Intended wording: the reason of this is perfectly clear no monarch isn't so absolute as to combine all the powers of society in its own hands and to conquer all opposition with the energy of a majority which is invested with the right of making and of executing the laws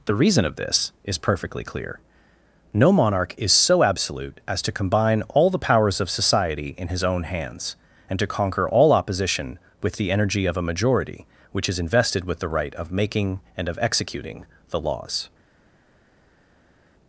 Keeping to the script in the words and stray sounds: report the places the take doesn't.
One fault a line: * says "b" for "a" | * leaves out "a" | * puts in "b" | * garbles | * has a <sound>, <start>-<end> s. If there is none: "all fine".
* says "is" for "isn't"
* says "his" for "its"